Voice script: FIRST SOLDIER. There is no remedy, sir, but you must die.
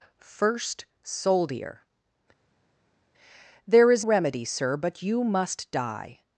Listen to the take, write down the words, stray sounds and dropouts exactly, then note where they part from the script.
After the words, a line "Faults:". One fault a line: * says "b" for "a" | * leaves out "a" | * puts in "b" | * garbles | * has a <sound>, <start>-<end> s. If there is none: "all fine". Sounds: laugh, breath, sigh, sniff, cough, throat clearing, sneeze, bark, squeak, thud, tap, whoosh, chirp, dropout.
FIRST SOLDIER. There is remedy, sir, but you must die.
Faults:
* leaves out "no"